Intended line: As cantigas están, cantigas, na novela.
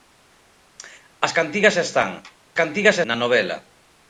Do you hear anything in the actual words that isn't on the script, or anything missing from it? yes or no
no